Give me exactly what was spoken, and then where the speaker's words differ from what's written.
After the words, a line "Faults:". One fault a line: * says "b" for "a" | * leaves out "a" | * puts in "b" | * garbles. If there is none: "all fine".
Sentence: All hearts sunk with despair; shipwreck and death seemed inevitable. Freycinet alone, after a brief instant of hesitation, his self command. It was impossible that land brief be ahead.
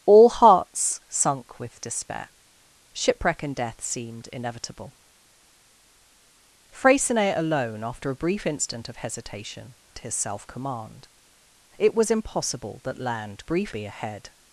All hearts sunk with despair; shipwreck and death seemed inevitable. Freycinet alone, after a brief instant of hesitation, his self command. It was impossible that land brief be ahead.
Faults:
all fine